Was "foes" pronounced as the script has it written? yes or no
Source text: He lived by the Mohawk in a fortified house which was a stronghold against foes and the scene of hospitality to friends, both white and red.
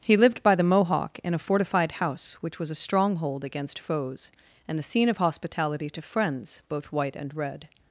yes